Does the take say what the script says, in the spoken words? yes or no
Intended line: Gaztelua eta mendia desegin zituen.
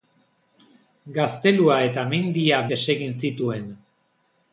yes